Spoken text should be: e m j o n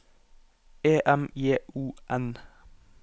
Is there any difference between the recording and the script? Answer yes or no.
no